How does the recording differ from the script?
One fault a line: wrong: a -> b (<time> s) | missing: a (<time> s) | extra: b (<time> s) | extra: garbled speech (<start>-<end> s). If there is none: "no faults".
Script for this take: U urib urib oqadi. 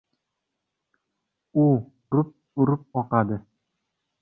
no faults